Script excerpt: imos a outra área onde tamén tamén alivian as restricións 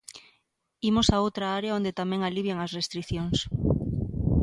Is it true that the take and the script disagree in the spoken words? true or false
true